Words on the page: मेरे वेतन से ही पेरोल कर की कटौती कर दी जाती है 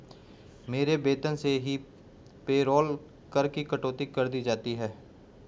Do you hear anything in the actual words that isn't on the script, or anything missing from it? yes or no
no